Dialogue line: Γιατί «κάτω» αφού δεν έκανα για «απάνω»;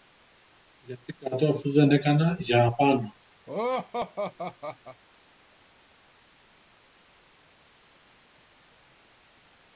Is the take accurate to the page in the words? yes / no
yes